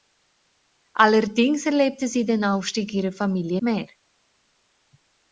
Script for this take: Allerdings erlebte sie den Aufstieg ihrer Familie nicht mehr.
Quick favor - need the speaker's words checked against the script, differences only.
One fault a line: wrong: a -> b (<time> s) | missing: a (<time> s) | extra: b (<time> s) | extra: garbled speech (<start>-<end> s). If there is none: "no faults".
missing: nicht (3.6 s)